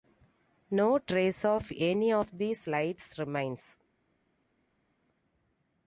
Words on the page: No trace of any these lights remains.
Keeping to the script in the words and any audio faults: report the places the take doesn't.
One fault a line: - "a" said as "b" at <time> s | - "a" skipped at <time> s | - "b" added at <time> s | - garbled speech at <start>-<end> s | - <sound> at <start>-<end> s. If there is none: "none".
- "of" added at 2.1 s